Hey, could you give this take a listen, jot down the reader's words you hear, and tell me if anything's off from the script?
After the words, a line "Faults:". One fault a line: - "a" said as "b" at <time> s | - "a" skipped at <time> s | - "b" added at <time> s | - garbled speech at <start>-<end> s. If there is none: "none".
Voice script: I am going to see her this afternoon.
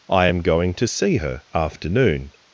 I am going to see her afternoon.
Faults:
- "this" skipped at 1.4 s